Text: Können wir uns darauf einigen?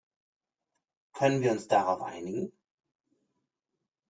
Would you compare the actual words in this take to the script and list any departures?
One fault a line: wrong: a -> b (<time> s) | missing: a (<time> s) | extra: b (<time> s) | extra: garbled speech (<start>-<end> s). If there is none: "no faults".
no faults